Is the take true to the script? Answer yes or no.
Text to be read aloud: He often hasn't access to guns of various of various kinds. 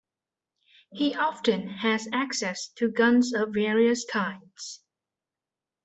no